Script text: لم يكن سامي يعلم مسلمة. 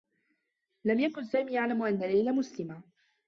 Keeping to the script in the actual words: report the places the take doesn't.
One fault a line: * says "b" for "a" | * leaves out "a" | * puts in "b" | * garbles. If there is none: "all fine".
* puts in "أنّ ليلى"